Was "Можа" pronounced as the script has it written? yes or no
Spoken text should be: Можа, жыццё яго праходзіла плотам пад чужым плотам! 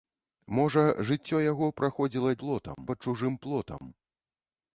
yes